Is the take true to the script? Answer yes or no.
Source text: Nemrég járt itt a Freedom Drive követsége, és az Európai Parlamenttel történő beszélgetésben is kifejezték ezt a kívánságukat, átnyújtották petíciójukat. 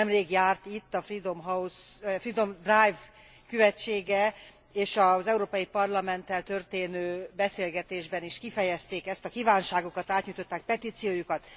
yes